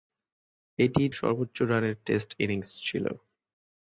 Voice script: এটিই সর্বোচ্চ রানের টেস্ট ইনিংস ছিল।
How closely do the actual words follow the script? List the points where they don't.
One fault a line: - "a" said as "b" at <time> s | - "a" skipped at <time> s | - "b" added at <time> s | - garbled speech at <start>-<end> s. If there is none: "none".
none